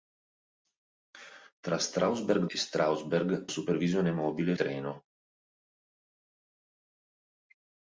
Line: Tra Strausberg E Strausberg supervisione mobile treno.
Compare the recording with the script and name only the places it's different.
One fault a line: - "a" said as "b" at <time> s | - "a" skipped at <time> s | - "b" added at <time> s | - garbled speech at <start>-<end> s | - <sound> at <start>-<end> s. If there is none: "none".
none